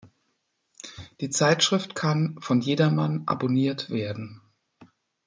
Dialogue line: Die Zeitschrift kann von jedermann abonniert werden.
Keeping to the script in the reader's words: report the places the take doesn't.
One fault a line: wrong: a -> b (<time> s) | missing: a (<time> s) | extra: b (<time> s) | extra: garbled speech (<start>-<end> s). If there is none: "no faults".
no faults